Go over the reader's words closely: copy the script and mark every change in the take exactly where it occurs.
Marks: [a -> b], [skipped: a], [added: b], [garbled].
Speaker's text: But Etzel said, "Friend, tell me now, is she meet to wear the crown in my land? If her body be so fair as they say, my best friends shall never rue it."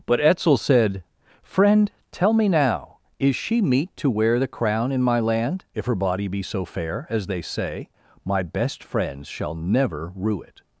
But Etzel said, "Friend, tell me now, is she meet to wear the crown in my land? If her body be so fair as they say, my best friends shall never rue it."